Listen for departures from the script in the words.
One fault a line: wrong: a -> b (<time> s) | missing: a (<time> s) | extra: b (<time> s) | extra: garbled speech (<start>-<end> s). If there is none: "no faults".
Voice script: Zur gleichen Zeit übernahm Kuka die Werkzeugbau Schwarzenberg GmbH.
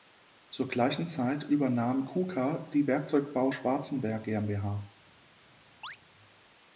no faults